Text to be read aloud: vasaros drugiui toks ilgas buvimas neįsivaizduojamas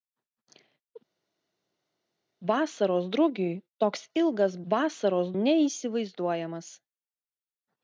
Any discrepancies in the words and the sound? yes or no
yes